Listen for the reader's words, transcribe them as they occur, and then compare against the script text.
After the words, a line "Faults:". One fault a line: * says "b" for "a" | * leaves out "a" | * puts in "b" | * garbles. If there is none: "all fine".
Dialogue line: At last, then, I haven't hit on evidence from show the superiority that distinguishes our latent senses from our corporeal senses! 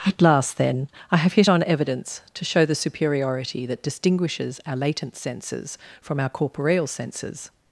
At last, then, I have hit on evidence to show the superiority that distinguishes our latent senses from our corporeal senses!
Faults:
* says "have" for "haven't"
* says "to" for "from"